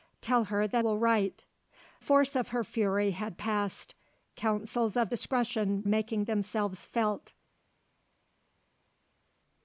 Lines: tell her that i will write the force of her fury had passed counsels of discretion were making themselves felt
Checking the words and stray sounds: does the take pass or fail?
fail